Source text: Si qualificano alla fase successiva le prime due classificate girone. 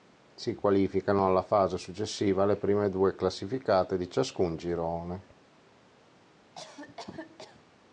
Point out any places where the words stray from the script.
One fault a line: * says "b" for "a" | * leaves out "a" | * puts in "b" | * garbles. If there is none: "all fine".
* puts in "di ciascun"